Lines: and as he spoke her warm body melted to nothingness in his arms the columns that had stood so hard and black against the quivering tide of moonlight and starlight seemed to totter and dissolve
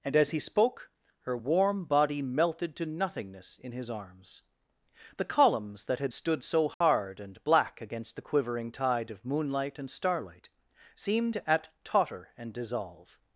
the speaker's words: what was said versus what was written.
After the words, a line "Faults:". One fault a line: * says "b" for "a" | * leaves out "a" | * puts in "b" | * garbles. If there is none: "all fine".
and as he spoke her warm body melted to nothingness in his arms the columns that had stood so hard and black against the quivering tide of moonlight and starlight seemed at totter and dissolve
Faults:
* says "at" for "to"